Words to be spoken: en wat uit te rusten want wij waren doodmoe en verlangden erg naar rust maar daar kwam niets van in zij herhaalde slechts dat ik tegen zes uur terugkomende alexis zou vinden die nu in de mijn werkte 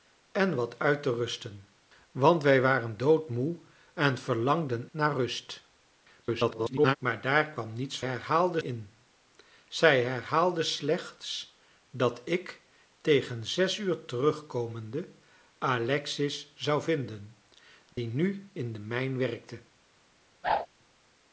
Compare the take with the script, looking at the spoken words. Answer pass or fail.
fail